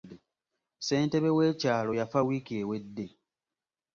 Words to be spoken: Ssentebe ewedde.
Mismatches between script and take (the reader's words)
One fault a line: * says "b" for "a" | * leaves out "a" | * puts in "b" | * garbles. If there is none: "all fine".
* puts in "w'ekyalo yafa wiiki"